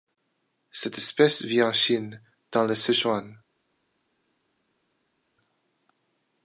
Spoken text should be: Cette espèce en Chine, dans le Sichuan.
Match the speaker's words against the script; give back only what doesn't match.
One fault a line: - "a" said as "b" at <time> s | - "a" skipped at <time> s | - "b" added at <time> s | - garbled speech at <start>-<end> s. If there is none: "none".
- "vit" added at 1.4 s